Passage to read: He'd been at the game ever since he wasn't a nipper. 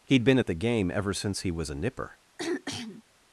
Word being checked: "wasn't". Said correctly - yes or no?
no